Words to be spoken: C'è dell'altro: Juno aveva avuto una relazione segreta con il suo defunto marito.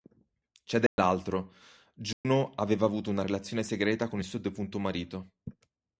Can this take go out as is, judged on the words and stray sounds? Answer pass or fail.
fail